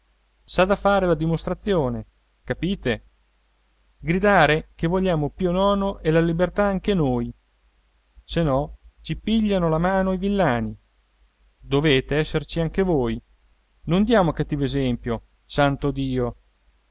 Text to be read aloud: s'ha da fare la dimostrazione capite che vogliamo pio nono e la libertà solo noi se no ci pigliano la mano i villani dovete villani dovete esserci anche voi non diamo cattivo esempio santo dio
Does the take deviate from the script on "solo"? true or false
true